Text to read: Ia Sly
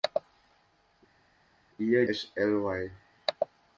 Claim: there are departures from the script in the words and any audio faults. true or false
false